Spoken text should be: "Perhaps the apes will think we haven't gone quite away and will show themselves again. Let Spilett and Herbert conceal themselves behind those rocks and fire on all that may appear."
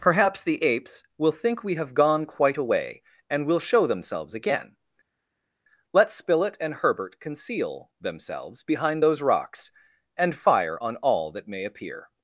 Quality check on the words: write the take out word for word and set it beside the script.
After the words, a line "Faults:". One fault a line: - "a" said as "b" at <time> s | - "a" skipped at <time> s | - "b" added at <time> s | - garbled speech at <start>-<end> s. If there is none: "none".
"Perhaps the apes will think we have gone quite away and will show themselves again. Let Spilett and Herbert conceal themselves behind those rocks and fire on all that may appear."
Faults:
- "haven't" said as "have" at 1.8 s